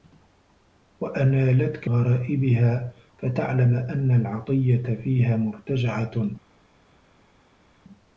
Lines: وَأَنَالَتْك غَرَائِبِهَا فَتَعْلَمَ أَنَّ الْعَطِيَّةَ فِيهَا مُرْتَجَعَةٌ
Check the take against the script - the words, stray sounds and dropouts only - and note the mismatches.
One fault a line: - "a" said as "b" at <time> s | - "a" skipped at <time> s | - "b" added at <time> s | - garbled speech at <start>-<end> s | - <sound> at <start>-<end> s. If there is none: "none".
none